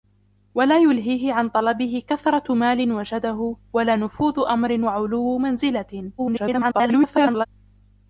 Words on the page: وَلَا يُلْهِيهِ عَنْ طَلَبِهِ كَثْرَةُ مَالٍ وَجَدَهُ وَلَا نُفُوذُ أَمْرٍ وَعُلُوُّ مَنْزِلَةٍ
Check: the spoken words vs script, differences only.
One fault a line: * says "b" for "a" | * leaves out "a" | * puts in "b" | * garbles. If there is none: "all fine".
* garbles